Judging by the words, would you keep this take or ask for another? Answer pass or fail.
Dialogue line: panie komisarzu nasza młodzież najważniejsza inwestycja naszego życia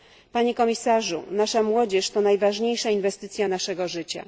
fail